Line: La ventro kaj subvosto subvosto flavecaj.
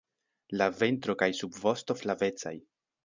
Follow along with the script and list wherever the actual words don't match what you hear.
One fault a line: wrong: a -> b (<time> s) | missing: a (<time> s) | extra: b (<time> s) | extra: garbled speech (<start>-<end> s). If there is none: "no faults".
missing: subvosto (2.0 s)